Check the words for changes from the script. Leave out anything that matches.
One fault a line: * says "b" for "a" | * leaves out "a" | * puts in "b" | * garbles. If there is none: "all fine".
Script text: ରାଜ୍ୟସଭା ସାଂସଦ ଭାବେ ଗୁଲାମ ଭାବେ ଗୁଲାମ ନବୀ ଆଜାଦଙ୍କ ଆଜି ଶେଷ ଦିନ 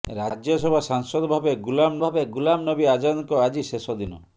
all fine